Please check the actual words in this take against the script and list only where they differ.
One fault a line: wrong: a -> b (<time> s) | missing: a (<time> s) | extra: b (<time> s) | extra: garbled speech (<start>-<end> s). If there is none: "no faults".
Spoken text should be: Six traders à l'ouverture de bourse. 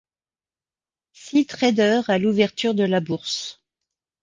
extra: la (2.8 s)